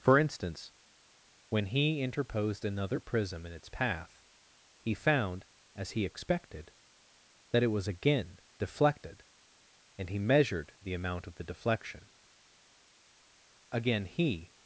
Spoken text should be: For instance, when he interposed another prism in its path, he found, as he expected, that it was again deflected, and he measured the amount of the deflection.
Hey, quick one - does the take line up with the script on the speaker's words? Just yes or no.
no